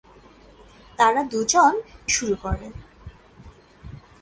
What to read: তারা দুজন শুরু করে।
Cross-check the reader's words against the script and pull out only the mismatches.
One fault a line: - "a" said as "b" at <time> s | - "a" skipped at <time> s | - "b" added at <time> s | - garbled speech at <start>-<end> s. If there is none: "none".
none